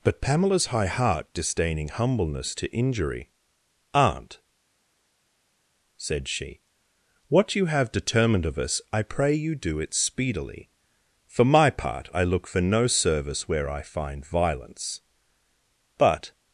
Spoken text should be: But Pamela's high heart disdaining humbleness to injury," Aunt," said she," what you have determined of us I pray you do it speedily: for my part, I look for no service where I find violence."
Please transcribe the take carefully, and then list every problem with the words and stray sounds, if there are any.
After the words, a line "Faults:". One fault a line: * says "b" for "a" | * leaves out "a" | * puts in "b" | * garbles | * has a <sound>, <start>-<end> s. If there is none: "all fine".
But Pamela's high heart disdaining humbleness to injury," Aunt," said she," what you have determined of us I pray you do it speedily: for my part, I look for no service where I find violence." But
Faults:
* puts in "But"